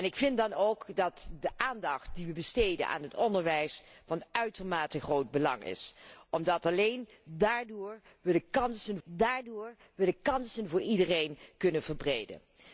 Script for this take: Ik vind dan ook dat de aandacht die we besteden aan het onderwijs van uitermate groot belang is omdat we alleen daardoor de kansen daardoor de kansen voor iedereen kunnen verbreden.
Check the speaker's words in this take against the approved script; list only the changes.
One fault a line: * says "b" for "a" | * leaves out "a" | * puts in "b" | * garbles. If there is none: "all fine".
all fine